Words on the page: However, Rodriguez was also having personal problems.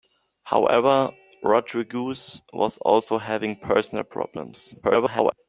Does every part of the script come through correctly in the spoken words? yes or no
no